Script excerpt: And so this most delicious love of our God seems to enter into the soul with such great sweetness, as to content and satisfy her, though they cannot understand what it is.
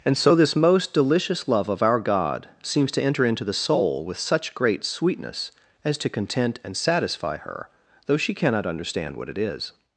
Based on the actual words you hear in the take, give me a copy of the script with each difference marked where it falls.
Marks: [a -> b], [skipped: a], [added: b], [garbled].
And so this most delicious love of our God seems to enter into the soul with such great sweetness, as to content and satisfy her, though [they -> she] cannot understand what it is.